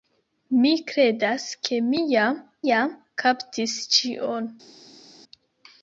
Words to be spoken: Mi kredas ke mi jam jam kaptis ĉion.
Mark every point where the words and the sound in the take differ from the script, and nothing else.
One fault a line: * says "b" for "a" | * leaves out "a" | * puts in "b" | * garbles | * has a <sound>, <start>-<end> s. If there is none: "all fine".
all fine